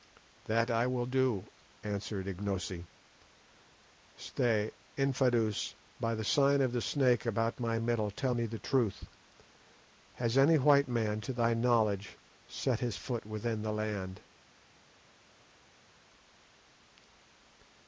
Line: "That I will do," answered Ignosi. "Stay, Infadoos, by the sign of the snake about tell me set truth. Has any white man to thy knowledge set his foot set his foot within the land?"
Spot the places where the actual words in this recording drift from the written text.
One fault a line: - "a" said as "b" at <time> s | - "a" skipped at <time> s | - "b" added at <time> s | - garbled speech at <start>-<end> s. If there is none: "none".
- "my middle" added at 7.6 s
- "set" said as "the" at 8.5 s
- "set his foot" skipped at 13.2 s